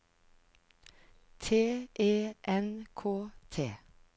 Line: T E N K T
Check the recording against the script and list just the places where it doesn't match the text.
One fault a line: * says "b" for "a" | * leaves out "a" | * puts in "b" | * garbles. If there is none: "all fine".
all fine